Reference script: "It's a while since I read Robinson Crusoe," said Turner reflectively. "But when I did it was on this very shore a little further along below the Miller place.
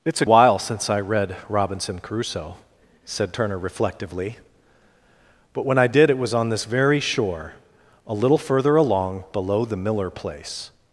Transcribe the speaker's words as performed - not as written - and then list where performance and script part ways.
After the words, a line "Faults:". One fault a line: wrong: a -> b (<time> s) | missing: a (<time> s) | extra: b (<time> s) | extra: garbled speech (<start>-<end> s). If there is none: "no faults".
"It's a while since I read Robinson Crusoe," said Turner reflectively. "But when I did it was on this very shore a little further along below the Miller place.
Faults:
no faults